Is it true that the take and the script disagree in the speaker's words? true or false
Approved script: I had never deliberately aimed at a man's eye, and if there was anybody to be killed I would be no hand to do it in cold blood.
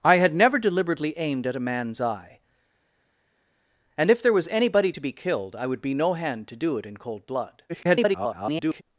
true